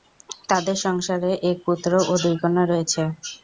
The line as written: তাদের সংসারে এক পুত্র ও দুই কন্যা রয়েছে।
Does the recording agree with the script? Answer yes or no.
yes